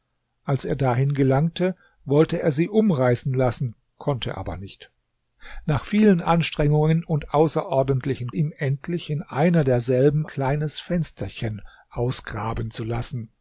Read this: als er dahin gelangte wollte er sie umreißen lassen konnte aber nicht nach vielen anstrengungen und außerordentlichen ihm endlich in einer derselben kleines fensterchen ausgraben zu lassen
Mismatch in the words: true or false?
false